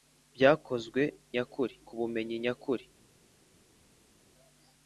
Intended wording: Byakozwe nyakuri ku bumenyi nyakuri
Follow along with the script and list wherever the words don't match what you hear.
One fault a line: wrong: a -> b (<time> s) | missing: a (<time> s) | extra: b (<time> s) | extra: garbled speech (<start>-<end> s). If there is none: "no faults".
no faults